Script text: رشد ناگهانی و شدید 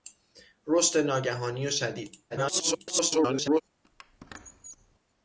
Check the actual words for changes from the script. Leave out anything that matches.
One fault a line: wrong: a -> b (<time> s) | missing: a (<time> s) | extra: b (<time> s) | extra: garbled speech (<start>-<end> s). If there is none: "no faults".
extra: garbled speech (2.3-3.6 s)